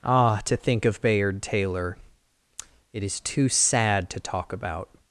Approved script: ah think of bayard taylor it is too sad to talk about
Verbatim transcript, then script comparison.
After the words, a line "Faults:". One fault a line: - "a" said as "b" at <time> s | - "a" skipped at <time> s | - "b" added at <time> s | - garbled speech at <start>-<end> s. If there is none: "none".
ah to think of bayard taylor it is too sad to talk about
Faults:
- "to" added at 0.5 s